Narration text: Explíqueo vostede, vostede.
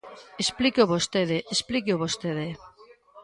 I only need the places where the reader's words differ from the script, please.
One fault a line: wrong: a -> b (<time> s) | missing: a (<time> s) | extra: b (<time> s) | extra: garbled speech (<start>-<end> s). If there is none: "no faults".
extra: explíqueo (1.6 s)